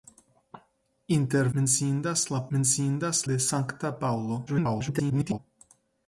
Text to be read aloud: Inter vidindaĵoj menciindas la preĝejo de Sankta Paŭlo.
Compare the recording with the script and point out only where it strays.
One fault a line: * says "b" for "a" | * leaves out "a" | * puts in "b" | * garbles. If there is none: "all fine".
* leaves out "vidindaĵoj"
* says "menciindas" for "preĝejo"
* garbles